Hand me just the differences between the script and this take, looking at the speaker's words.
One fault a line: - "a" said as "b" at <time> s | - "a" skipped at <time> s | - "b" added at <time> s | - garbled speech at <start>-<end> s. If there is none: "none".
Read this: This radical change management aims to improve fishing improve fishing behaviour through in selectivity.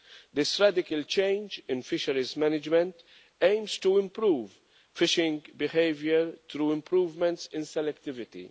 - "in fisheries" added at 1.7 s
- "improve fishing" skipped at 5.4 s
- "improvements" added at 6.7 s